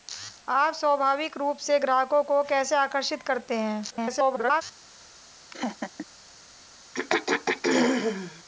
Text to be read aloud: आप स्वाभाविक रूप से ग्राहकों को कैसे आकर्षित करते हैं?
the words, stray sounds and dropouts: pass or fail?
fail